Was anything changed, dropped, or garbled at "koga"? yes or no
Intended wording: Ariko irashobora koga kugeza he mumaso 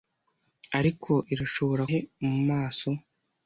yes